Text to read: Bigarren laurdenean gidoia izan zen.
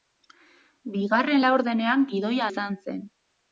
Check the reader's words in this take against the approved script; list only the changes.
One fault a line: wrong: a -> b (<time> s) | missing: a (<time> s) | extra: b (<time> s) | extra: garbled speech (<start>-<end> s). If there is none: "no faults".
no faults